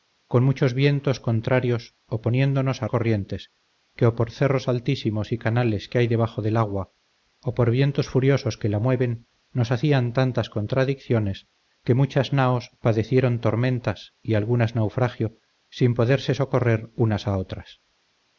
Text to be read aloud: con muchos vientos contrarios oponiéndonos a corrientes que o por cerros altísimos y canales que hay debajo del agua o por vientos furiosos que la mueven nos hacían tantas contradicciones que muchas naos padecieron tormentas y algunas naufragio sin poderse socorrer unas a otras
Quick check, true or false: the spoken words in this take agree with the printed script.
true